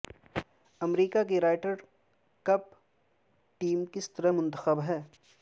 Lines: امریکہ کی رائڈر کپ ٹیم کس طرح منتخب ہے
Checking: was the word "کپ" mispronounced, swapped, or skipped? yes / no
no